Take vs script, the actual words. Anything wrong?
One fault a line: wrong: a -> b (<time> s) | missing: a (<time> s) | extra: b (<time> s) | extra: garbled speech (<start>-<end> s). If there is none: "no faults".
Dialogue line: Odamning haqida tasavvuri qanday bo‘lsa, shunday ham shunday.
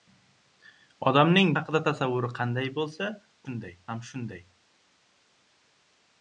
no faults